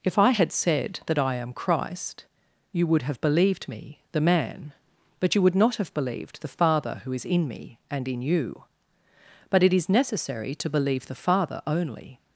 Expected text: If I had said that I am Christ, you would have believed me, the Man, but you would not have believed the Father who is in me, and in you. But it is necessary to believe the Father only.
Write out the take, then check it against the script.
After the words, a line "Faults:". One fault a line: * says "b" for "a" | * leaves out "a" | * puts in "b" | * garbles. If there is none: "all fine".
If I had said that I am Christ, you would have believed me, the Man, but you would not have believed the Father who is in me, and in you. But it is necessary to believe the Father only.
Faults:
all fine